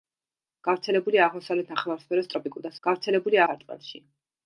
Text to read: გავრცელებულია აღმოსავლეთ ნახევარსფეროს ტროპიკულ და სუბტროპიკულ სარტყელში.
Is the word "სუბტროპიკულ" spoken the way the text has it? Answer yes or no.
no